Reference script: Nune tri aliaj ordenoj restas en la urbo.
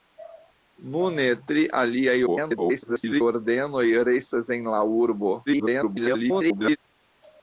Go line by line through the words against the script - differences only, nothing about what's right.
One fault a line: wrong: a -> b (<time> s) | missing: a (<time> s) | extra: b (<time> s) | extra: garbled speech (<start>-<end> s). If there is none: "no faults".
extra: garbled speech (2.3-3.2 s)
extra: garbled speech (5.5-6.8 s)